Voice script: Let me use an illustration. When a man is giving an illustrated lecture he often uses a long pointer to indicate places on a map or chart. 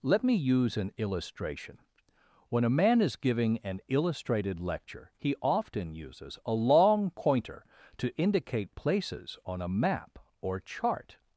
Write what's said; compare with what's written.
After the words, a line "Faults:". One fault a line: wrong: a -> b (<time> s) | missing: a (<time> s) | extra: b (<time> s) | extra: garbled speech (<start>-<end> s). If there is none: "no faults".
Let me use an illustration. When a man is giving an illustrated lecture he often uses a long pointer to indicate places on a map or chart.
Faults:
no faults